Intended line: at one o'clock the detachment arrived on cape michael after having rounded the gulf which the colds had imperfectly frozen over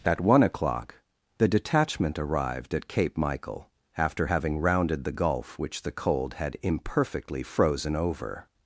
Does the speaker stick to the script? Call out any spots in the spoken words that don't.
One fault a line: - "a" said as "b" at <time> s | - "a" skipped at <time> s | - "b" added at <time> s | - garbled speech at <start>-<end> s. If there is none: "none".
- "on" said as "at" at 2.7 s
- "colds" said as "cold" at 5.9 s